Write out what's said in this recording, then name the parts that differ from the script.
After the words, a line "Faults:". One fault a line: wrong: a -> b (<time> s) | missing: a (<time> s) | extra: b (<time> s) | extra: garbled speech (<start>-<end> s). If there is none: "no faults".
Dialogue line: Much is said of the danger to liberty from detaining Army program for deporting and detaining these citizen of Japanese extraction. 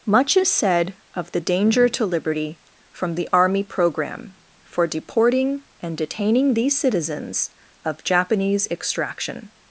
Much is said of the danger to liberty from the Army program for deporting and detaining these citizens of Japanese extraction.
Faults:
wrong: detaining -> the (3.1 s)
wrong: citizen -> citizens (6.8 s)